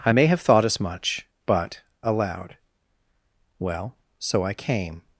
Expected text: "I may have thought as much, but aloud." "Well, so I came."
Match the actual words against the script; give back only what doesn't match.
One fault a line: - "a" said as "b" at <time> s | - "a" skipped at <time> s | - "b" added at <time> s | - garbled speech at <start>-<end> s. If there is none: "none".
none